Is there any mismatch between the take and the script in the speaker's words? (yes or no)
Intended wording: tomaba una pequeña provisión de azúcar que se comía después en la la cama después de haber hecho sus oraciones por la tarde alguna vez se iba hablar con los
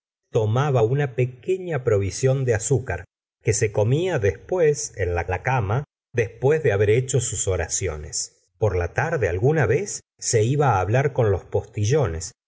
no